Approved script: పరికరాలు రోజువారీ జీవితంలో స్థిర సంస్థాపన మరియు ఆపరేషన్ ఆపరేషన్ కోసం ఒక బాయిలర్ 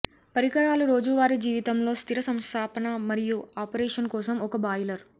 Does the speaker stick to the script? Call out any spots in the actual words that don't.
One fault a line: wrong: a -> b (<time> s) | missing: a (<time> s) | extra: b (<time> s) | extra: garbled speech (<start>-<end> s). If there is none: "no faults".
missing: ఆపరేషన్ (4.1 s)